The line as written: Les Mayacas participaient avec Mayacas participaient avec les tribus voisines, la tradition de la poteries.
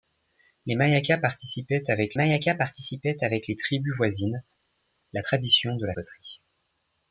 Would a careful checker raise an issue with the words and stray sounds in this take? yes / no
no